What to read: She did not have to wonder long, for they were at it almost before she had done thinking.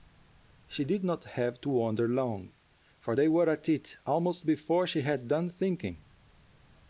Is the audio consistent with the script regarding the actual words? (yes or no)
yes